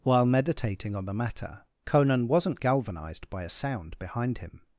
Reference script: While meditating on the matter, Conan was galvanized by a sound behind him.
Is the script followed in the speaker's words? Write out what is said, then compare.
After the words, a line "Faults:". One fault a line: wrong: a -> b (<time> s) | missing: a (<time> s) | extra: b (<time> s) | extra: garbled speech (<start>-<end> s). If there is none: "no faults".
While meditating on the matter, Conan wasn't galvanized by a sound behind him.
Faults:
wrong: was -> wasn't (2.3 s)